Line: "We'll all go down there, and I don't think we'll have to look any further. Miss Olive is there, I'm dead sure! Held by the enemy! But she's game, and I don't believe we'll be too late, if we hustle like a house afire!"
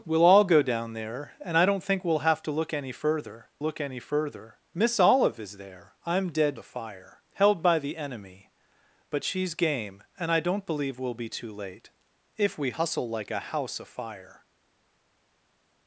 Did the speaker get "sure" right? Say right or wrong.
wrong